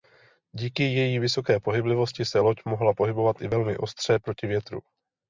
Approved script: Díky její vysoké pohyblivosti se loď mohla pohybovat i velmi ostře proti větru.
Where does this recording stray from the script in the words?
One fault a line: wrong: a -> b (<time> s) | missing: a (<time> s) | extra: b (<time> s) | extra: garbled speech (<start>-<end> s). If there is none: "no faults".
no faults